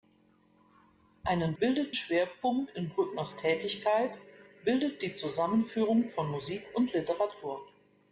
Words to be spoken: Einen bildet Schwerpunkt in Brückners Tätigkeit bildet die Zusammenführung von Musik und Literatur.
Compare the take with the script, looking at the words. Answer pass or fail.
pass